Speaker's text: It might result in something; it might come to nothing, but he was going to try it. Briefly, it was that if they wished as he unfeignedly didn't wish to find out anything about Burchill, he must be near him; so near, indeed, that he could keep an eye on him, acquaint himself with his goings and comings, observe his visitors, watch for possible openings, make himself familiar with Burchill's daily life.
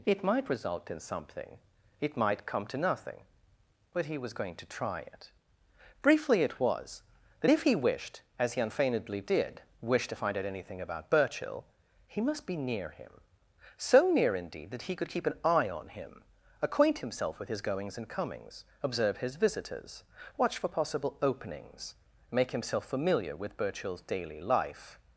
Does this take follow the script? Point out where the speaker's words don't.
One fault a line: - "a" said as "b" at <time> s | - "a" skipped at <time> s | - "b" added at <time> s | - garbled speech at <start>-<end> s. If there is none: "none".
- "they" said as "he" at 7.6 s
- "didn't" said as "did" at 9.2 s